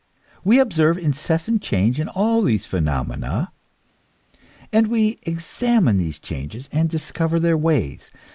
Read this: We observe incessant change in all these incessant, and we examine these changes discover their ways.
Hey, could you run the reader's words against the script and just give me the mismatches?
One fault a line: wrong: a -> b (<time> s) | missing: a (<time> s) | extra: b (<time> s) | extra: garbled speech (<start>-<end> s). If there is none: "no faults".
wrong: incessant -> phenomena (2.6 s)
extra: and (6.7 s)